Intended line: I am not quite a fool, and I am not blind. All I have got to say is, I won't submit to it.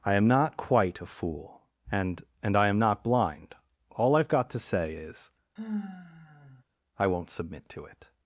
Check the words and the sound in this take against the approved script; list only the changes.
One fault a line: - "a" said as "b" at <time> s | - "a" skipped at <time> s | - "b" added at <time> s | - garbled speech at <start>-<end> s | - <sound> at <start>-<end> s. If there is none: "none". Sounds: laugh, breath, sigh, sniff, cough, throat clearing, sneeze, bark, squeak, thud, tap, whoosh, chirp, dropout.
- "and" added at 2.4 s
- sigh at 5.6-6.6 s